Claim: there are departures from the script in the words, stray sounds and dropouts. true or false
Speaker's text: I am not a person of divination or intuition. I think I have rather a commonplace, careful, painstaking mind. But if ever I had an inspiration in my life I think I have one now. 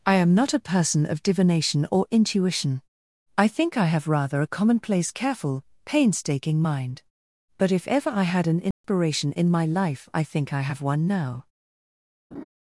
true